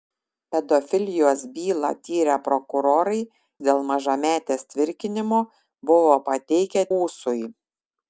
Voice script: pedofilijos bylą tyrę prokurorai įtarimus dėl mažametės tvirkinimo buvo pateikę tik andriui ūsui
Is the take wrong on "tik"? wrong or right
wrong